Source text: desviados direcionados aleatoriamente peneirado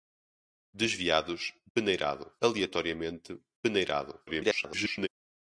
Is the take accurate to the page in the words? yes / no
no